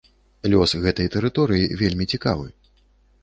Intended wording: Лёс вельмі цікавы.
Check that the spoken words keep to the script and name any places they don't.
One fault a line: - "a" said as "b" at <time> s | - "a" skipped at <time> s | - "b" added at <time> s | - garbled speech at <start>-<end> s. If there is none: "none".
- "гэтай тэрыторыі" added at 0.8 s